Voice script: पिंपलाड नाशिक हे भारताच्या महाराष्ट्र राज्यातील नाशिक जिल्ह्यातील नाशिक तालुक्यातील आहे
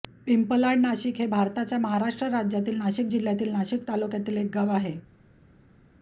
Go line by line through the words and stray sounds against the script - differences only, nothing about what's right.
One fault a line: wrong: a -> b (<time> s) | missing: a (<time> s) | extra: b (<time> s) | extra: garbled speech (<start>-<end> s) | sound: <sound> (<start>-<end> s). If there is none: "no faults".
extra: एक गाव (4.4 s)